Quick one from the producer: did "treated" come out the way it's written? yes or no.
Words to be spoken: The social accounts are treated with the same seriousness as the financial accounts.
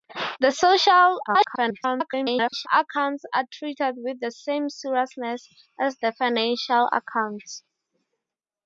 yes